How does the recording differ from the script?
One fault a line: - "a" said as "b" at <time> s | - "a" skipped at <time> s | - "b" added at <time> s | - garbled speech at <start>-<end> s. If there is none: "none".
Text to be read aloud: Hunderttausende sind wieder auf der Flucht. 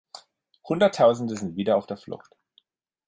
none